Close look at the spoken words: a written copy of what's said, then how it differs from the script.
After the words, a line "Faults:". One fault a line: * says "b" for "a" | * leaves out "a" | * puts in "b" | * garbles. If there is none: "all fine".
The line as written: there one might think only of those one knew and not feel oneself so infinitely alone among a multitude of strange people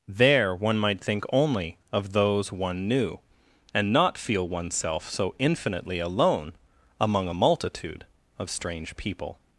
there one might think only of those one knew and not feel oneself so infinitely alone among a multitude of strange people
Faults:
all fine